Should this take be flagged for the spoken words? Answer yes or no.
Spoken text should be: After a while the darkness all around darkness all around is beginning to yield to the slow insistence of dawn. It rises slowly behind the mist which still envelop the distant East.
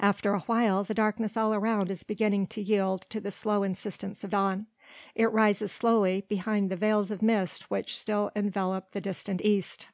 yes